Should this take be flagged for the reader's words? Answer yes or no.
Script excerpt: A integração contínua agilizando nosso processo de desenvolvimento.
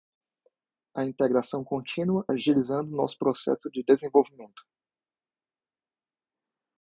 no